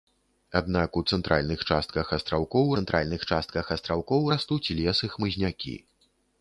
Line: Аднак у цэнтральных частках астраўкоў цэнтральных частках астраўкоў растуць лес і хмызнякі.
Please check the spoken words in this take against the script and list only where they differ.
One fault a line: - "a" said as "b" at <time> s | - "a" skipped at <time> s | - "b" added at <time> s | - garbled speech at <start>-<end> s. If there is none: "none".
none